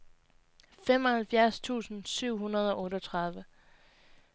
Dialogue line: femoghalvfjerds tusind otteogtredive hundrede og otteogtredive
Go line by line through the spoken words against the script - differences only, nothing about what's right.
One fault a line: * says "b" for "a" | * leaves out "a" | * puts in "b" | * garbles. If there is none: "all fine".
* says "syv" for "otteogtredive"